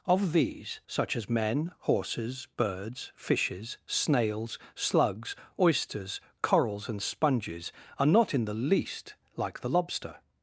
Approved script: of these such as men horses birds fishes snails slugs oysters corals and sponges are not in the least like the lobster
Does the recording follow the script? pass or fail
pass